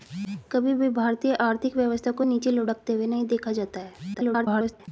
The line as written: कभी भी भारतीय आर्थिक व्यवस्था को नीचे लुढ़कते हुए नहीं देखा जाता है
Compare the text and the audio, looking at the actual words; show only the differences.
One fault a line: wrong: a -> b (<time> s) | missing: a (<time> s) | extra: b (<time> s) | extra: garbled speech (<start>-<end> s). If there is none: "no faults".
extra: garbled speech (4.1-4.9 s)